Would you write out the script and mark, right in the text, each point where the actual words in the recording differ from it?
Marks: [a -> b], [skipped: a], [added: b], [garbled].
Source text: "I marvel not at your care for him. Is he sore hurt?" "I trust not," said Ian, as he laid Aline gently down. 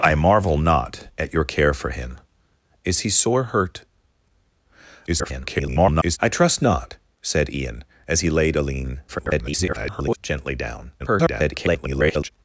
"I marvel not at your care for him. Is he sore hurt?" [garbled] "I trust not," said Ian, as he laid Aline [garbled] gently down. [garbled]